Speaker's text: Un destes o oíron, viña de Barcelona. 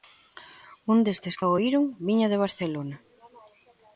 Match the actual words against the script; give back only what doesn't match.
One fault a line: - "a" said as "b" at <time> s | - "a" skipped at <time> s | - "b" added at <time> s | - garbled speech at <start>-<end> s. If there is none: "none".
none